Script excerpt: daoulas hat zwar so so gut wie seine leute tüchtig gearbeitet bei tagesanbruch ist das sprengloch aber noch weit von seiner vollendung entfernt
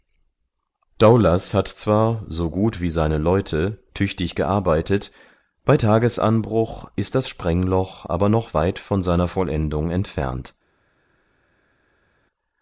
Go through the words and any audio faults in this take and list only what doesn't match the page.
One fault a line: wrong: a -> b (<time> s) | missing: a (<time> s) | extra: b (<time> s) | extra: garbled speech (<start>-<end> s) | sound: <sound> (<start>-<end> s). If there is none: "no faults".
missing: so (2.5 s)